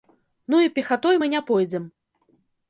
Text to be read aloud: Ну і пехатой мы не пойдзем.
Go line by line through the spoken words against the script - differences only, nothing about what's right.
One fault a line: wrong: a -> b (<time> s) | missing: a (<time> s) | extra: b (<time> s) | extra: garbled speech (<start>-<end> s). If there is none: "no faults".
no faults